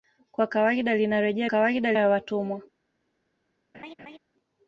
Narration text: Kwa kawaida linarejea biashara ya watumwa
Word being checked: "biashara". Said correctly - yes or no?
no